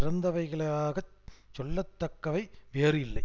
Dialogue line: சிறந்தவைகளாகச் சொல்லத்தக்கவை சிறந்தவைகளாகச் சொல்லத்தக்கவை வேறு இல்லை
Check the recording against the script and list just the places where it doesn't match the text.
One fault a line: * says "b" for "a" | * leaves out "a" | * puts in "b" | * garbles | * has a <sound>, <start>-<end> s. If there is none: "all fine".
* leaves out "சிறந்தவைகளாகச் சொல்லத்தக்கவை"